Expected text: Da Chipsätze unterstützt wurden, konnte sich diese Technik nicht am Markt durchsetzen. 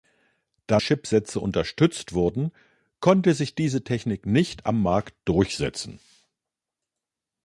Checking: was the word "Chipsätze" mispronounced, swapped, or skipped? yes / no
no